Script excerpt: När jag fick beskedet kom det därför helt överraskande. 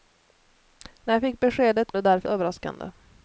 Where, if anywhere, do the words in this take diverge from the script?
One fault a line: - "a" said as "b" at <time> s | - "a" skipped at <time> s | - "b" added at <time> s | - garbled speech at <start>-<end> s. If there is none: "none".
- "kom" skipped at 1.9 s
- "helt" skipped at 2.3 s